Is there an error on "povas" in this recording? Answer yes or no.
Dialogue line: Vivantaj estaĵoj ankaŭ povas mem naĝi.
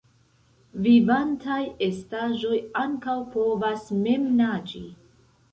no